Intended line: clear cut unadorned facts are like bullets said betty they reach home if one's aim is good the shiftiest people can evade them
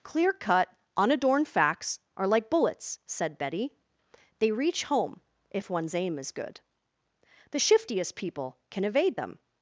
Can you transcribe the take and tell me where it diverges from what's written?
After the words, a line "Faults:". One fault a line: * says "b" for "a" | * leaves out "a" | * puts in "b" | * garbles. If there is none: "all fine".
clear cut unadorned facts are like bullets said betty they reach home if one's aim is good the shiftiest people can evade them
Faults:
all fine